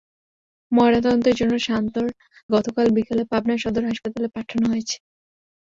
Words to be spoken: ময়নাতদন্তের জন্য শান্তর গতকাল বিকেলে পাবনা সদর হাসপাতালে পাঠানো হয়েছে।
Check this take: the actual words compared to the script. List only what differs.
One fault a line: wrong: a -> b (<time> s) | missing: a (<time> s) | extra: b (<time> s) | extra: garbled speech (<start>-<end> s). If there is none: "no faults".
no faults